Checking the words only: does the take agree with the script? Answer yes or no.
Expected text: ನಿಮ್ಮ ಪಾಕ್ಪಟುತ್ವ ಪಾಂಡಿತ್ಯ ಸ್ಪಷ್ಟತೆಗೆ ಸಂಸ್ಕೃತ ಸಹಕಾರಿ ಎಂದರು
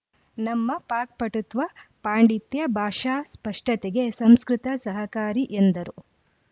no